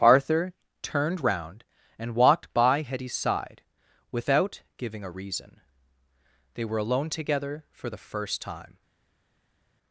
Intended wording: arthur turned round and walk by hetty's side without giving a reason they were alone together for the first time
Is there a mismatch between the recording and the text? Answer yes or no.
yes